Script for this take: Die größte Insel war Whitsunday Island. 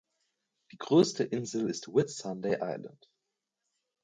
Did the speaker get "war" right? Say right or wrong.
wrong